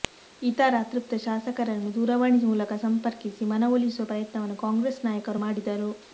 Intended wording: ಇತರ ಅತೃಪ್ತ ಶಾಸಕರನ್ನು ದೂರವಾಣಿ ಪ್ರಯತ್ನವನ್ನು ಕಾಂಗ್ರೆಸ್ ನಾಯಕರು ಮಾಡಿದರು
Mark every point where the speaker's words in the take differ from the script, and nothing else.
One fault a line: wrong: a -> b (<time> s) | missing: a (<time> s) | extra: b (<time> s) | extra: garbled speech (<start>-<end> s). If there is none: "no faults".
extra: ಮೂಲಕ ಸಂಪರ್ಕಿಸಿ ಮನವೊಲಿಸುವ (2.4 s)